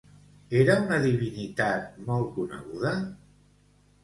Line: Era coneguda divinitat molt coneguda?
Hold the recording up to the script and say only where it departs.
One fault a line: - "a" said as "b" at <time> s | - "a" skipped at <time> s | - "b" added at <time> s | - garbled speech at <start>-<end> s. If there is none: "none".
- "coneguda" said as "una" at 0.8 s